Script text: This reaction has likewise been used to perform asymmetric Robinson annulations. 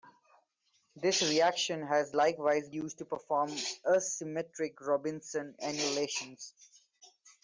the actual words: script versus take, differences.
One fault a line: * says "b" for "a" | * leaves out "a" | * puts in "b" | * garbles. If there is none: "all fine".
* leaves out "been"